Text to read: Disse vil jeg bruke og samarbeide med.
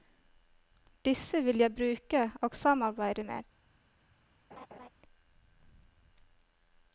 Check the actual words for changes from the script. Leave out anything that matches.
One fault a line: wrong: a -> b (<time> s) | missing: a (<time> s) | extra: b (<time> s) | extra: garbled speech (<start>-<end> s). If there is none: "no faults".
no faults